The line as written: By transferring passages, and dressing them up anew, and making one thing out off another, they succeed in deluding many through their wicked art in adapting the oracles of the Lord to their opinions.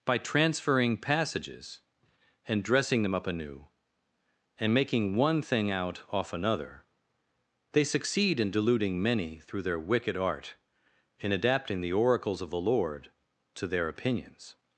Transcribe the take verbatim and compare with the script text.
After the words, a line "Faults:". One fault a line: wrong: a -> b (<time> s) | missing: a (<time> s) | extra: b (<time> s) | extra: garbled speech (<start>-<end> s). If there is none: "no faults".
By transferring passages, and dressing them up anew, and making one thing out off another, they succeed in deluding many through their wicked art in adapting the oracles of the Lord to their opinions.
Faults:
no faults